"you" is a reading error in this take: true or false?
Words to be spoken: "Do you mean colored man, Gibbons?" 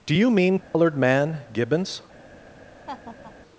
false